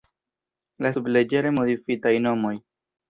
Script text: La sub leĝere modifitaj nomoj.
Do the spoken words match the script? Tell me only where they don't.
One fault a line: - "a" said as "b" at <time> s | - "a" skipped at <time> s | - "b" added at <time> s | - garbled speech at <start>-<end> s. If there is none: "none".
none